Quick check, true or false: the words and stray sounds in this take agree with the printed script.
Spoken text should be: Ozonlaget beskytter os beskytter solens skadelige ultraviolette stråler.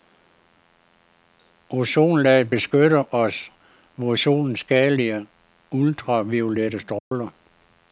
false